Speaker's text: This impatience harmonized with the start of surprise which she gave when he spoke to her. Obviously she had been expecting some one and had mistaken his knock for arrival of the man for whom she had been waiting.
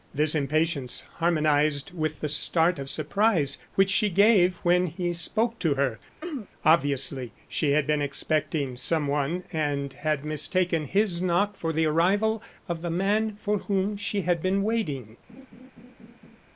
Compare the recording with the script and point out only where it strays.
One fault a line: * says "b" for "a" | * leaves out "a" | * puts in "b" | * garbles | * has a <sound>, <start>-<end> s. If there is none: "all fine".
* has a throat clearing, 6.2-6.5 s
* puts in "the"
* has a laugh, 15.3-16.4 s